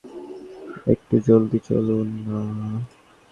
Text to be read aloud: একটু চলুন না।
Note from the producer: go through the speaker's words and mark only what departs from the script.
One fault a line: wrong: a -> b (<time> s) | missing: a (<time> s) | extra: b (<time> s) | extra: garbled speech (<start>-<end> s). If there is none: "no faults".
extra: জলদি (1.3 s)